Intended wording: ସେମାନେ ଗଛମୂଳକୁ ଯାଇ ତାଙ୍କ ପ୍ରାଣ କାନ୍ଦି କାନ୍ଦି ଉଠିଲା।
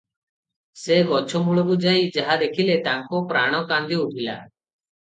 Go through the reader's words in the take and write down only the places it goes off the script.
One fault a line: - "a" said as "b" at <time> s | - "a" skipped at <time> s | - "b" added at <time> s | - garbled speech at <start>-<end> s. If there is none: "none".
- "ସେମାନେ" said as "ସେ" at 0.8 s
- "ଯାହା ଦେଖିଲେ" added at 2.2 s
- "କାନ୍ଦି" skipped at 4.0 s